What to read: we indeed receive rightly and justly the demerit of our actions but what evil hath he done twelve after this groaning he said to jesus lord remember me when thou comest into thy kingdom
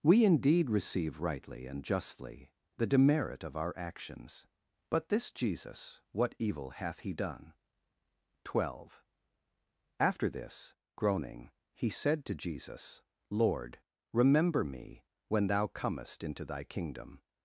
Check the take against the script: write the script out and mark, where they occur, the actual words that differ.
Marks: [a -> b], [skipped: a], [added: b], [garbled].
we indeed receive rightly and justly the demerit of our actions but [added: this jesus] what evil hath he done twelve after this groaning he said to jesus lord remember me when thou comest into thy kingdom